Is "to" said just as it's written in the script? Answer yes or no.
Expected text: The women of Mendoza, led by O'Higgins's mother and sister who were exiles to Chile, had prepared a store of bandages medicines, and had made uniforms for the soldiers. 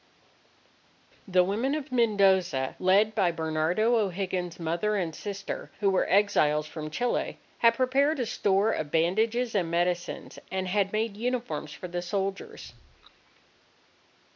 no